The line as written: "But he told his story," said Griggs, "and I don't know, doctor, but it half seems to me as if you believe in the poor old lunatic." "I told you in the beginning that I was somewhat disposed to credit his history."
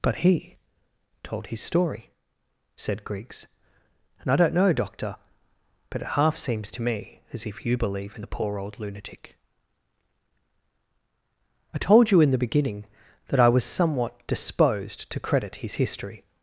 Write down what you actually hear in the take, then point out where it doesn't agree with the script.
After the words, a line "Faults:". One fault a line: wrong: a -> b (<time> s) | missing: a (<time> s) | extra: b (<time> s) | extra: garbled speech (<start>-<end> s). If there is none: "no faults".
"But he told his story," said Griggs, "and I don't know, doctor, but it half seems to me as if you believe in the poor old lunatic." "I told you in the beginning that I was somewhat disposed to credit his history."
Faults:
no faults